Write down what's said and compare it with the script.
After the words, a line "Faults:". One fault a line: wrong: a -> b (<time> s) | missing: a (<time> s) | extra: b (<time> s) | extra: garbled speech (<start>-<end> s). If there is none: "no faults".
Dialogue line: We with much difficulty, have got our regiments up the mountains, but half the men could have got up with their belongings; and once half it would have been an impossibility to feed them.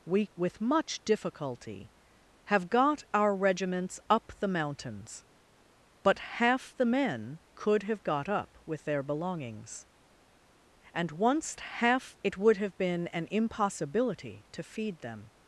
We with much difficulty, have got our regiments up the mountains, but half the men could have got up with their belongings; and once half it would have been an impossibility to feed them.
Faults:
no faults